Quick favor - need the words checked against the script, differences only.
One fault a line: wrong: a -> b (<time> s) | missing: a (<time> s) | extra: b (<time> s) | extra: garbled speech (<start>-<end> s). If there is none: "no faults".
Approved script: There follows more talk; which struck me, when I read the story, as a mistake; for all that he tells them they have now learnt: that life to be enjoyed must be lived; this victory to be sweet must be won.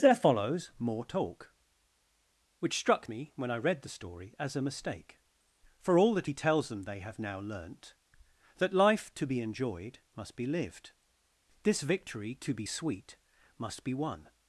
no faults